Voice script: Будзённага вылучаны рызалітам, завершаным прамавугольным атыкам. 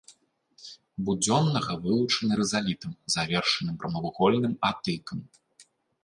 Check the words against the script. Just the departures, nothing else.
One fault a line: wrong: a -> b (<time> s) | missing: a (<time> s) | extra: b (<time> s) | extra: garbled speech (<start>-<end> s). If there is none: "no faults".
no faults